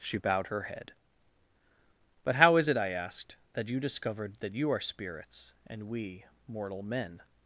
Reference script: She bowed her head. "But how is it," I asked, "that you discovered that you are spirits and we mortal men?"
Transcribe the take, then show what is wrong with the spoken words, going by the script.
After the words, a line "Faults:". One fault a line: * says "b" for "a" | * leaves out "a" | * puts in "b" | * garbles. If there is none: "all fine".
She bowed her head. "But how is it," I asked, "that you discovered that you are spirits and we mortal men?"
Faults:
all fine